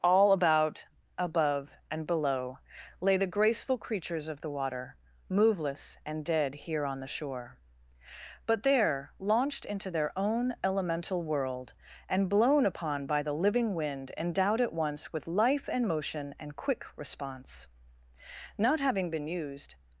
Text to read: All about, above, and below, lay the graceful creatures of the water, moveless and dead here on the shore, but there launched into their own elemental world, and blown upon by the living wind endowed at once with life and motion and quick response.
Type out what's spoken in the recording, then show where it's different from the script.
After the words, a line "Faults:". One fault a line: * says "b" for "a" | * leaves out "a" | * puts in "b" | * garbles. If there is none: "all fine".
All about, above, and below, lay the graceful creatures of the water, moveless and dead here on the shore, but there launched into their own elemental world, and blown upon by the living wind endowed at once with life and motion and quick response. Not having been used
Faults:
* puts in "Not having been used"